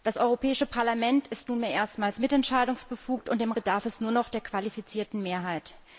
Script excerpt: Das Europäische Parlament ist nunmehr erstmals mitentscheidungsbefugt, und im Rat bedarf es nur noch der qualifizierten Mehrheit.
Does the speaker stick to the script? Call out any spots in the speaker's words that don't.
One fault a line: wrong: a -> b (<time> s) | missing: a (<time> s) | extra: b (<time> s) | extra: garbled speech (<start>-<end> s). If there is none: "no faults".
missing: Rat (3.5 s)